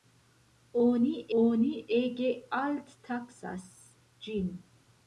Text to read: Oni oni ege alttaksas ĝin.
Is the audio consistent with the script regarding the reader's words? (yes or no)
yes